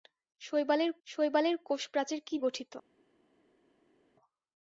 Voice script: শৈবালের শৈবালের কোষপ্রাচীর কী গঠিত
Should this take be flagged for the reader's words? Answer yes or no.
no